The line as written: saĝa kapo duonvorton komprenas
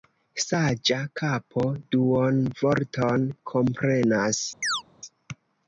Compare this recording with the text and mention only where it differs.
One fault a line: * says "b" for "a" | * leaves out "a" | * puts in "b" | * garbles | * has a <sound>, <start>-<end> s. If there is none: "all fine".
* has a chirp, 4.6-4.8 s